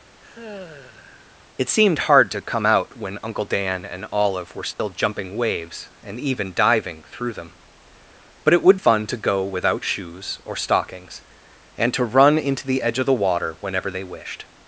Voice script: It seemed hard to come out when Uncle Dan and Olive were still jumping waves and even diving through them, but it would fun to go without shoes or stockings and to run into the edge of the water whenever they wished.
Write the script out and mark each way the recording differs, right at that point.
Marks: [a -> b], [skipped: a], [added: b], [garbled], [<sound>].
[sigh] It seemed hard to come out when Uncle Dan and Olive were still [dropout] jumping waves and even diving through them, but it would fun to go without shoes or stockings and to run into the edge of the water whenever they wished.